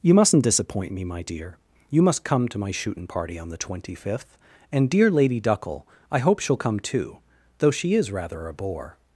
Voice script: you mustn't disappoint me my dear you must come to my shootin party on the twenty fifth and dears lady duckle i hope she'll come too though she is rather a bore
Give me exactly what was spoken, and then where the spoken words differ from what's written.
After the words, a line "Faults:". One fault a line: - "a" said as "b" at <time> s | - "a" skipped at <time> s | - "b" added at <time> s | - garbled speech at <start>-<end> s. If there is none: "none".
you mustn't disappoint me my dear you must come to my shootin party on the twenty fifth and dear lady duckle i hope she'll come too though she is rather a bore
Faults:
- "dears" said as "dear" at 4.9 s